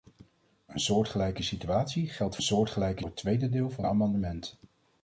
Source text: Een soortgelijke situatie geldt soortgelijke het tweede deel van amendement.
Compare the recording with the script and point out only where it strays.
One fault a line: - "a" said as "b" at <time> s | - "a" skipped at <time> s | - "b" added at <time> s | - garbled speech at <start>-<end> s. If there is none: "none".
none